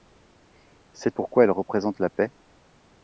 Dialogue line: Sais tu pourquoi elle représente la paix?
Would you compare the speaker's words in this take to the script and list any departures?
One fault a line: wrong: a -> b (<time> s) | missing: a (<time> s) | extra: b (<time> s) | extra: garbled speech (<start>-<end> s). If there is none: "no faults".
missing: tu (1.1 s)